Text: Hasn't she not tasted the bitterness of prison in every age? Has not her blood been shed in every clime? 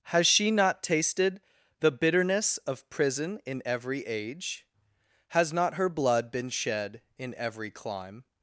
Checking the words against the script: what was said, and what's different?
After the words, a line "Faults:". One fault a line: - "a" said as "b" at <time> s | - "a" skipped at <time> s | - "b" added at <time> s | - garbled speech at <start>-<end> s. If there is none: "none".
Has she not tasted the bitterness of prison in every age? Has not her blood been shed in every clime?
Faults:
- "Hasn't" said as "Has" at 0.0 s